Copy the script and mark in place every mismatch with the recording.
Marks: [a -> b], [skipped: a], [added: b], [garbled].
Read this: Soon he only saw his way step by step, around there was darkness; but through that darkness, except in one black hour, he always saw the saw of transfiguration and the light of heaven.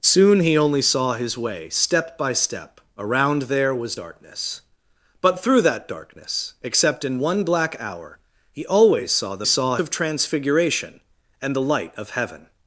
Soon he only saw his way step by step, around there was darkness; but through that darkness, except in one black hour, he always saw the saw of transfiguration and the light of heaven.